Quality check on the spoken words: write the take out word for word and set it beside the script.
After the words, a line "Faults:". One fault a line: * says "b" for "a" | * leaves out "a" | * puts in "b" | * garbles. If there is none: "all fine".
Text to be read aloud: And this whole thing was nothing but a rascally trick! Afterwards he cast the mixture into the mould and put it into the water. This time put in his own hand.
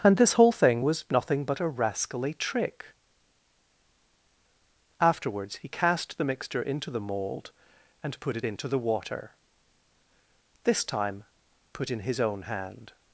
And this whole thing was nothing but a rascally trick! Afterwards he cast the mixture into the mould and put it into the water. This time put in his own hand.
Faults:
all fine